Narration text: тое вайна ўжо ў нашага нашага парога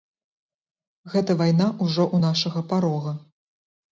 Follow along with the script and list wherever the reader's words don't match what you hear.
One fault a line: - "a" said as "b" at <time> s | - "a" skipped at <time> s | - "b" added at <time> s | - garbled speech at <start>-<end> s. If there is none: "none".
- "тое" said as "гэта" at 1.1 s
- "нашага" skipped at 2.6 s